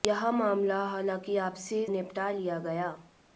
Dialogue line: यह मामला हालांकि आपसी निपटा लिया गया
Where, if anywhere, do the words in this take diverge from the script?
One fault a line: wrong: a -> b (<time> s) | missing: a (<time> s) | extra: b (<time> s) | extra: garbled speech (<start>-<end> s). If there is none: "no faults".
no faults